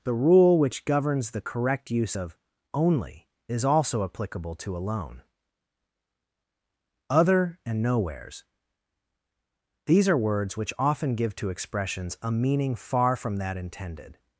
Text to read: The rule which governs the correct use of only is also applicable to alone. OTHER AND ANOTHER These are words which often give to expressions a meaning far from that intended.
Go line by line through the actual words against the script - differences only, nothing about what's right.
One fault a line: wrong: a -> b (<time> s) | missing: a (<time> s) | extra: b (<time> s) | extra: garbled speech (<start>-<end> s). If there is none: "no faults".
wrong: ANOTHER -> Nowheres (7.8 s)